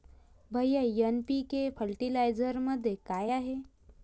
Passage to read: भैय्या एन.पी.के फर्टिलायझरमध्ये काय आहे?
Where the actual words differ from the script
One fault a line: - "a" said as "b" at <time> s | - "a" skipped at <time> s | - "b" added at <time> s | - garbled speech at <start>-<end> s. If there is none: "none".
none